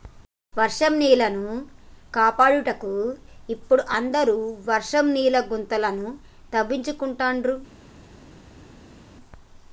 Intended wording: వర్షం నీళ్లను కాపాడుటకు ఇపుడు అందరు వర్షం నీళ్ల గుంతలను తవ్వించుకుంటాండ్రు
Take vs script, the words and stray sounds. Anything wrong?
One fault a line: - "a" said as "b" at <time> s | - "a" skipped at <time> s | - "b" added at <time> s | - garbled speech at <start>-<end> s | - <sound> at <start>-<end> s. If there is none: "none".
none